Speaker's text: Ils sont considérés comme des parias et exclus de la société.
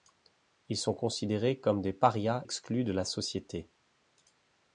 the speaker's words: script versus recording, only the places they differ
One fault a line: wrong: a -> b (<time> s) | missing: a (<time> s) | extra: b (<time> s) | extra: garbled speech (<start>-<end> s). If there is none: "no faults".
missing: et (2.4 s)